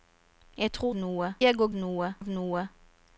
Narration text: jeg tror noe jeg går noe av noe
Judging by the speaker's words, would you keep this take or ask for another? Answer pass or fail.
pass